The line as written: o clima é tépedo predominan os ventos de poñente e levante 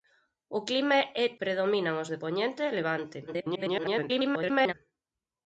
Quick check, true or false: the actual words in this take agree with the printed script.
false